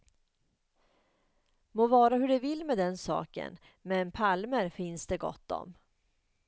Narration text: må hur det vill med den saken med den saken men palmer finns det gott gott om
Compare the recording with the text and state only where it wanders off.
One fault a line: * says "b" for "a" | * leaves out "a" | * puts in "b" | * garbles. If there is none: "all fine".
* puts in "vara"
* leaves out "med den saken"
* leaves out "gott"